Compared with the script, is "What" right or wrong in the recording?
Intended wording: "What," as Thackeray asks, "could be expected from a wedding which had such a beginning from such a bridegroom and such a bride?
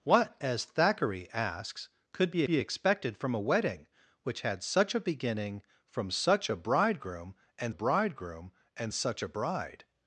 right